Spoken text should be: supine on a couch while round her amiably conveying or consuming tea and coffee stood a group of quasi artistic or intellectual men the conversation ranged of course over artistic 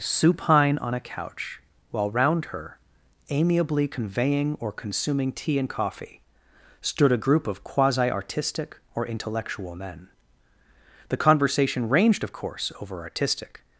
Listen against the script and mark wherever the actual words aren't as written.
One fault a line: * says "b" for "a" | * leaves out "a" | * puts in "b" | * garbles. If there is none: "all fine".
all fine